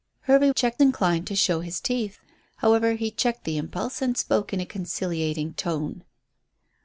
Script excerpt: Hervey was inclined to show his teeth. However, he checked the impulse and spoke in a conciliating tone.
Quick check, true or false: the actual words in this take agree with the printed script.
false